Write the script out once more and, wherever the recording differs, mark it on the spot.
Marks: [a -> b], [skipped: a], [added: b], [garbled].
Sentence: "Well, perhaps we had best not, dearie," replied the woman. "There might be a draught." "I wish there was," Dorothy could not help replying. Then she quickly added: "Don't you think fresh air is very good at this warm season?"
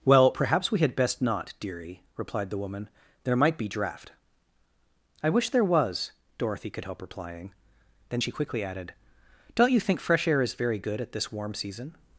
"Well, perhaps we had best not, dearie," replied the woman. "There might be [skipped: a] draught." "I wish there was," Dorothy could [skipped: not] help replying. Then she quickly added: "Don't you think fresh air is very good at this warm season?"